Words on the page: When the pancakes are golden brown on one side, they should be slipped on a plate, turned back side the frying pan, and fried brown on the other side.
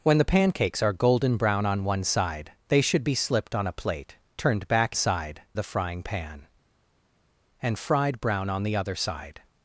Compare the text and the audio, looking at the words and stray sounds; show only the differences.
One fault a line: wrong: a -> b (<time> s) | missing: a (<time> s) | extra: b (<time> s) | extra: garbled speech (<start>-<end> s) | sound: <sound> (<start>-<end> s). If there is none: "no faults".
no faults